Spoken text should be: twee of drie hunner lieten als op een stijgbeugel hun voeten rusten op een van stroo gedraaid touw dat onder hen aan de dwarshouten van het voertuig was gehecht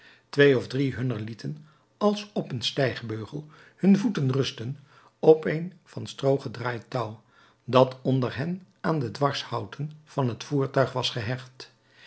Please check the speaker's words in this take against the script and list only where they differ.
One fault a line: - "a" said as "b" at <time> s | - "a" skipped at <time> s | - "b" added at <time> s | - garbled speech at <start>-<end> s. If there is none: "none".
none